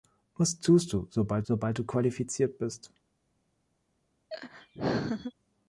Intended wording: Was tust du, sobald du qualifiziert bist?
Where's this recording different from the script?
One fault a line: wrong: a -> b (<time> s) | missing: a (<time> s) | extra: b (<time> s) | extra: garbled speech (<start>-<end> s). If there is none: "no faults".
extra: sobald (1.4 s)